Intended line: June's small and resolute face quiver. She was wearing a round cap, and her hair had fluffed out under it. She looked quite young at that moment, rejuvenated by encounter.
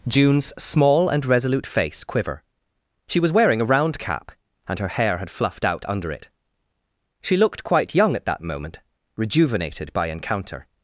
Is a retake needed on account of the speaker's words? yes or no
no